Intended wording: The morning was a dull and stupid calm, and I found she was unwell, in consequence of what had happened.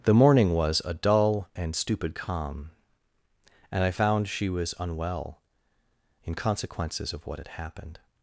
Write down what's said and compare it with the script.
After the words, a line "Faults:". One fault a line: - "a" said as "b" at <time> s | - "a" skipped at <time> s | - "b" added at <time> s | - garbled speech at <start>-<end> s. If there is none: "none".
The morning was a dull and stupid calm, and I found she was unwell, in consequences of what had happened.
Faults:
- "consequence" said as "consequences" at 6.3 s